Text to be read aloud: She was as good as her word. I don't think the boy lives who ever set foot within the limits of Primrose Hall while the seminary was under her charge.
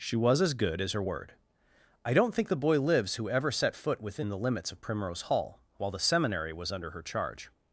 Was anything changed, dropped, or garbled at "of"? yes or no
no